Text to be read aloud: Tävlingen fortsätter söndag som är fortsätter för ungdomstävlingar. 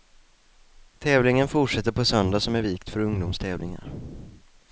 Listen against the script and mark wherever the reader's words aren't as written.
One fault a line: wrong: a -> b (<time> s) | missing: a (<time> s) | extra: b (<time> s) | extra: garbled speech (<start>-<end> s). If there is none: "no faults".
extra: på (1.9 s)
wrong: fortsätter -> vikt (2.6 s)